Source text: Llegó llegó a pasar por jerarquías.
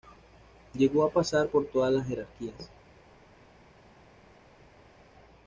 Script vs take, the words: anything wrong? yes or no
yes